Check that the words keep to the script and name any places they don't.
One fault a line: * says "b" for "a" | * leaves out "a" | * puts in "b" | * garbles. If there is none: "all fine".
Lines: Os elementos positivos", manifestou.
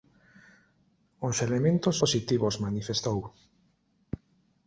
all fine